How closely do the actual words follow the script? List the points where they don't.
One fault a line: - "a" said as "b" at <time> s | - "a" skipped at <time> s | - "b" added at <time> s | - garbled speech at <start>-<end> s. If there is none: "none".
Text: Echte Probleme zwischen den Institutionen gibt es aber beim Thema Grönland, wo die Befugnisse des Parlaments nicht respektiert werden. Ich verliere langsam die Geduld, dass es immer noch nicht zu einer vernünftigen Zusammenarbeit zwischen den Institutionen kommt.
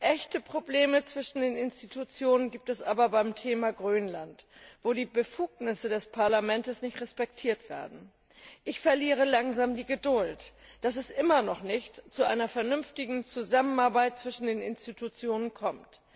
none